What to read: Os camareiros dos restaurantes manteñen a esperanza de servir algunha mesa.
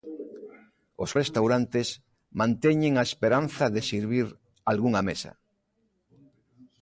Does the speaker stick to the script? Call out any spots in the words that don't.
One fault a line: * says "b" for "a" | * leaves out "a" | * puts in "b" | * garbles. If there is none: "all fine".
* leaves out "camareiros dos"